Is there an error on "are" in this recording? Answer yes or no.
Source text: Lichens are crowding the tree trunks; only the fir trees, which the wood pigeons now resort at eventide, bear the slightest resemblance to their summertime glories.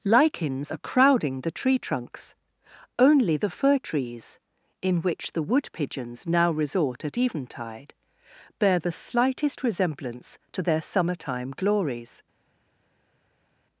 no